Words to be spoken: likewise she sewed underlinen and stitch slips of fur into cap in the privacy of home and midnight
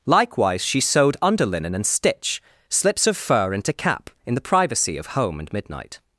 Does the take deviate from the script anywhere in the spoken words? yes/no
no